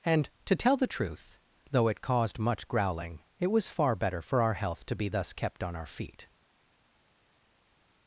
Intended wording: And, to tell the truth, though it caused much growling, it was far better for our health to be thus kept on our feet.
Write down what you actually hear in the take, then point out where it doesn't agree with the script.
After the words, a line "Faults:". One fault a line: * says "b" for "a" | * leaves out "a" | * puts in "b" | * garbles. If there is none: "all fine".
And, to tell the truth, though it caused much growling, it was far better for our health to be thus kept on our feet.
Faults:
all fine